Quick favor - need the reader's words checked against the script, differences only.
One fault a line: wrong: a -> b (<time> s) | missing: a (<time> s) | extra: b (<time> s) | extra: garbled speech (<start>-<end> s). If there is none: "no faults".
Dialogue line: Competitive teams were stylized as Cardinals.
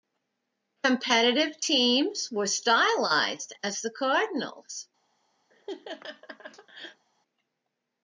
extra: the (3.8 s)